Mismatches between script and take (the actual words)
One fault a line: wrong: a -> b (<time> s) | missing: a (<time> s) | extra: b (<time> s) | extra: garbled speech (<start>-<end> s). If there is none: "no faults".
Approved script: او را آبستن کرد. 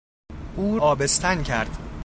missing: را (0.8 s)